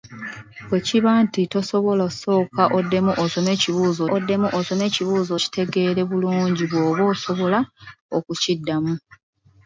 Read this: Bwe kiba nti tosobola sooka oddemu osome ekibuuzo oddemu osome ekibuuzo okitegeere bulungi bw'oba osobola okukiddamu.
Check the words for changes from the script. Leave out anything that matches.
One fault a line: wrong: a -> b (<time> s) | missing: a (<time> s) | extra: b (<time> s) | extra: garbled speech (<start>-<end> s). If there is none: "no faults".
no faults